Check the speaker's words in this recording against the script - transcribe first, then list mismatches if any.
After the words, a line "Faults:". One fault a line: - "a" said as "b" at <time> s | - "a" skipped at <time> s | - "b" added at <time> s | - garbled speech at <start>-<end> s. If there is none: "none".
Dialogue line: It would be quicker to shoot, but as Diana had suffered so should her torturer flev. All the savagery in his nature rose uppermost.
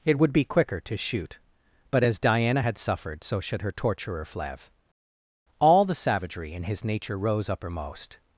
It would be quicker to shoot, but as Diana had suffered so should her torturer flev. All the savagery in his nature rose uppermost.
Faults:
none